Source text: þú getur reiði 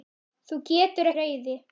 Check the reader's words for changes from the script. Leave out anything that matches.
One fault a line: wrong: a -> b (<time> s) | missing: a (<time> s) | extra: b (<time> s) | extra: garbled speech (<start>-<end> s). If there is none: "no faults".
no faults